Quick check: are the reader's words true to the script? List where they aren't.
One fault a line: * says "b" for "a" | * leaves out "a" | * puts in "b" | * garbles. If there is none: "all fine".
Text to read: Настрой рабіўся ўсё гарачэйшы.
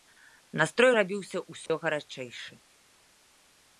all fine